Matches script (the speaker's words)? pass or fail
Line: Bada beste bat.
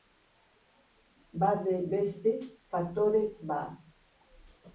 fail